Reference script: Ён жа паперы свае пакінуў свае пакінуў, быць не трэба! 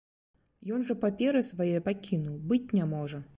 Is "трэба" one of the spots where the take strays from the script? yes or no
yes